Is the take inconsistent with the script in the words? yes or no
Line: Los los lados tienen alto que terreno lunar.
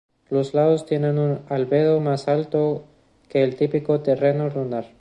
yes